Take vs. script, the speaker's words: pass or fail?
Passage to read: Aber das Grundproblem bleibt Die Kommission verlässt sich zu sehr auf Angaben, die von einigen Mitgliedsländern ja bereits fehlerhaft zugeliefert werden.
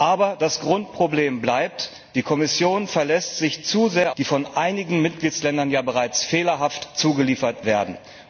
fail